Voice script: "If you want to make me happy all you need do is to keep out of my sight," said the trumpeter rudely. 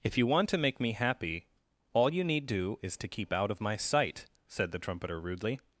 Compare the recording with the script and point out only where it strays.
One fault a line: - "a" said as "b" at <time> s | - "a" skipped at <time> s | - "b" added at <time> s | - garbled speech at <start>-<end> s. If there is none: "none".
none